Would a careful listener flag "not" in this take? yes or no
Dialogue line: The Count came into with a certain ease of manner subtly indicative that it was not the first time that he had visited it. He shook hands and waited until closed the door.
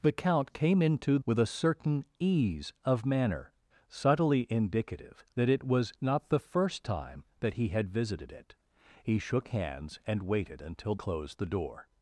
no